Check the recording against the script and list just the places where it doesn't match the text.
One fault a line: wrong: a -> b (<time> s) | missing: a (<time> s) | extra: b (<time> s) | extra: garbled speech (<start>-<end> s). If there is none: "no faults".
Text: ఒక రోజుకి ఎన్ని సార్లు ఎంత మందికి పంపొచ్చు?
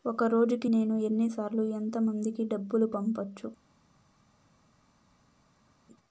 extra: నేను (0.6 s)
extra: డబ్బులు (2.4 s)